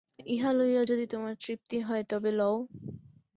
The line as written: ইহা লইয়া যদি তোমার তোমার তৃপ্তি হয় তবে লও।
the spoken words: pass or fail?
fail